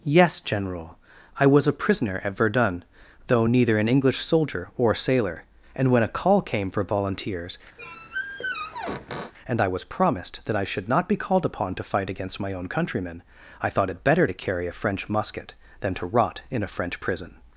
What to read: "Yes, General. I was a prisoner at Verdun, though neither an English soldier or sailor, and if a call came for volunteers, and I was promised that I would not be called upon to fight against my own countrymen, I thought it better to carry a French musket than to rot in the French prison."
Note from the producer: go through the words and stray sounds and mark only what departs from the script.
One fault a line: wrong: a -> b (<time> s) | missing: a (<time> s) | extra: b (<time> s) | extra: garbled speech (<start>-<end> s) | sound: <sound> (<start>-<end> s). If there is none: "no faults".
wrong: if -> when (5.9 s)
sound: squeak (7.8-9.3 s)
wrong: would -> should (10.6 s)
wrong: the -> a (16.6 s)